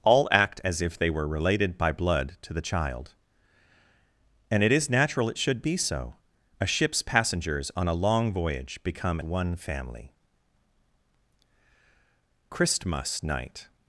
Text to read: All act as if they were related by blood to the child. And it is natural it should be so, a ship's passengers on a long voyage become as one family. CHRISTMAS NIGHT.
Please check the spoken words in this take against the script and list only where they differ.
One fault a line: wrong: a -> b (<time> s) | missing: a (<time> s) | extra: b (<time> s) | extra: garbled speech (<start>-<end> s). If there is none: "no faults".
missing: as (9.2 s)